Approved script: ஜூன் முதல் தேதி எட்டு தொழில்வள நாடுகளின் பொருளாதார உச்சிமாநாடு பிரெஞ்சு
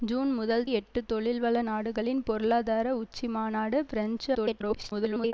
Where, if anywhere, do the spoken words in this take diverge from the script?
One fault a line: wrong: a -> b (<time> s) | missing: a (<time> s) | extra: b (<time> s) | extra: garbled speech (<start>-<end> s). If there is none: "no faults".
missing: தேதி (0.6 s)
extra: garbled speech (4.3-5.3 s)